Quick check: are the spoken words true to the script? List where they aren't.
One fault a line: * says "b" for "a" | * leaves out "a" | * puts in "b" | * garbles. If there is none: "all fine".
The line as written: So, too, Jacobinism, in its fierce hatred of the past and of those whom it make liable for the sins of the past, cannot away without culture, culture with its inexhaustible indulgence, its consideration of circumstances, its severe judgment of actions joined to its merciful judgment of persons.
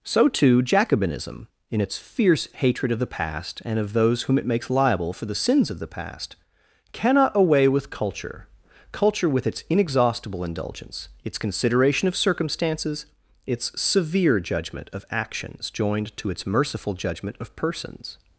* says "makes" for "make"
* says "with" for "without"